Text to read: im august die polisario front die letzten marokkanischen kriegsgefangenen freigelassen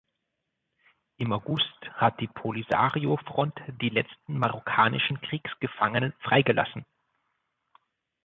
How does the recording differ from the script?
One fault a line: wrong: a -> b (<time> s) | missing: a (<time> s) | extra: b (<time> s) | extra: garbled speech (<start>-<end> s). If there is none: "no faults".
extra: hat (1.9 s)